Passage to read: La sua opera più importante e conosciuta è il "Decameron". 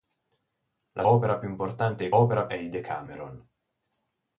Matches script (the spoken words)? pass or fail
fail